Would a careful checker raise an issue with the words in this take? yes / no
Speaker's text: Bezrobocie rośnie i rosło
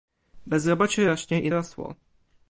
no